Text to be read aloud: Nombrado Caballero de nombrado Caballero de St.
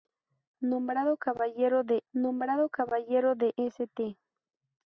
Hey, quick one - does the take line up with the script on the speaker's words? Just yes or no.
yes